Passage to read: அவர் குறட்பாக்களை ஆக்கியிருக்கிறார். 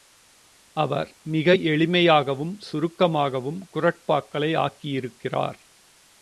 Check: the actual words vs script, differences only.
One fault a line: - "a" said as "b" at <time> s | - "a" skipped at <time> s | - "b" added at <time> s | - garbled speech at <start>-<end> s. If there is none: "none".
- "மிக எளிமையாகவும் சுருக்கமாகவும்" added at 1.2 s